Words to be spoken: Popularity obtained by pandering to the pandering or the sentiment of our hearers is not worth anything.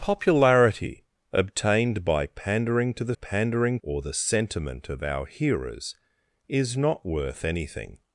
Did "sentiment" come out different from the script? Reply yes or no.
no